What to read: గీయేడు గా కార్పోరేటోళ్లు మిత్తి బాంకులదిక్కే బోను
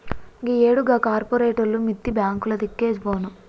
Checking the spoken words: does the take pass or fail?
pass